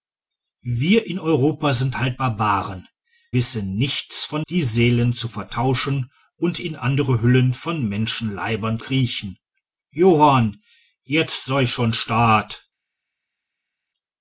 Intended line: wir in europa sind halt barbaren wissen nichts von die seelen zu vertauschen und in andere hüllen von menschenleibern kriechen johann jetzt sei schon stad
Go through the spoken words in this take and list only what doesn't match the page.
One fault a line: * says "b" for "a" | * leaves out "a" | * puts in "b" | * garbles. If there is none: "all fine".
all fine